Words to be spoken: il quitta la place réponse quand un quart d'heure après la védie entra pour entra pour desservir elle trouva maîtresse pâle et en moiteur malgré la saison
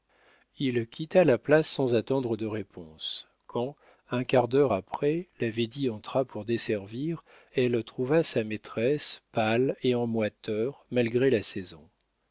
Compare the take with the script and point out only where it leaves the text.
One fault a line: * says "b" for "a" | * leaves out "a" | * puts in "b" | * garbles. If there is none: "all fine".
* puts in "sans attendre de"
* leaves out "entra pour"
* puts in "sa"